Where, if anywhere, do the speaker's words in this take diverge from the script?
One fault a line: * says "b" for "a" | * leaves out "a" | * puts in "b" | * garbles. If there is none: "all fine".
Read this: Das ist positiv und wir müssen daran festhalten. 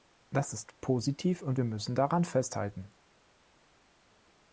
all fine